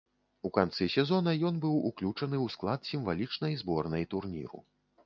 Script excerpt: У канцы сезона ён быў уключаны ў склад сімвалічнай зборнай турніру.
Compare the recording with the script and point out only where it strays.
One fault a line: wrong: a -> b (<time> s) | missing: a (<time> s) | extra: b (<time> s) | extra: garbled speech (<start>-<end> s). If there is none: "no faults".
no faults